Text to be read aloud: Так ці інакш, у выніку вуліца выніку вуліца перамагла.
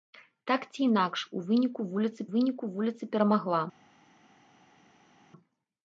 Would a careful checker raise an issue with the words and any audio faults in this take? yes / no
no